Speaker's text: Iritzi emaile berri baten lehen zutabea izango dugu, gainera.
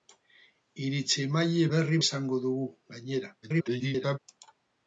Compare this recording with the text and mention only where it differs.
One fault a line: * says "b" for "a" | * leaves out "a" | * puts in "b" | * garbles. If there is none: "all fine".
* leaves out "baten lehen zutabea"
* garbles